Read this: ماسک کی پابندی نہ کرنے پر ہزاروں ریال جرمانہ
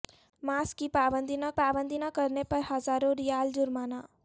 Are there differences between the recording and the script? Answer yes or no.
yes